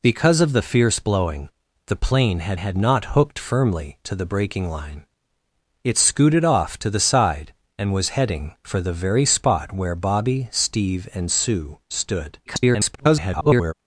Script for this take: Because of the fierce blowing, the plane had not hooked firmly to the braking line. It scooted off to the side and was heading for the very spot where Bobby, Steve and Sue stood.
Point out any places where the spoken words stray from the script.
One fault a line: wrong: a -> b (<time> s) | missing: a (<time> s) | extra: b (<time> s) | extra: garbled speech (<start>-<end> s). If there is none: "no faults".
extra: had (2.6 s)
extra: garbled speech (12.5-13.7 s)